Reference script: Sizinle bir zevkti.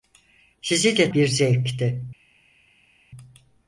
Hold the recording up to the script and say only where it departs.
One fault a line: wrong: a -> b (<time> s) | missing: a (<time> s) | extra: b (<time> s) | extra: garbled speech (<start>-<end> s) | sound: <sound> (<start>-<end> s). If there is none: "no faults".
no faults